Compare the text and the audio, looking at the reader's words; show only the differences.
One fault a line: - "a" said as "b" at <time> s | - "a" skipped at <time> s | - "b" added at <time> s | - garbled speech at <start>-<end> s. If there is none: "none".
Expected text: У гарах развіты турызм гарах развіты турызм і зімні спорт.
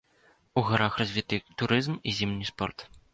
- "гарах развіты турызм" skipped at 2.0 s